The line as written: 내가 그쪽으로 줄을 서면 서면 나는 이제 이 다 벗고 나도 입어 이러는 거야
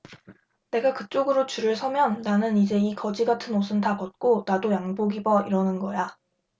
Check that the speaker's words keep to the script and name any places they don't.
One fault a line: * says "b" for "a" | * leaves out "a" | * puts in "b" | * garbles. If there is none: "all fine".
* leaves out "서면"
* puts in "거지 같은 옷은"
* puts in "양복"